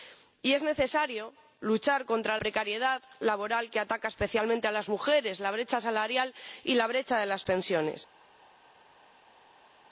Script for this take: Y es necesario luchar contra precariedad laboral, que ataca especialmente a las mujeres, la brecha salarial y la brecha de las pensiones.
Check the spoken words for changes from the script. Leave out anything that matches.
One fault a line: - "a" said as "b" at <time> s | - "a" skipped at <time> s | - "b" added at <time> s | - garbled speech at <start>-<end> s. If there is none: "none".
none